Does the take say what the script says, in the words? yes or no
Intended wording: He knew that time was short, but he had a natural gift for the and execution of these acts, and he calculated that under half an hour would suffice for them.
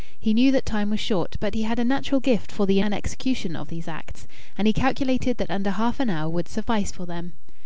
yes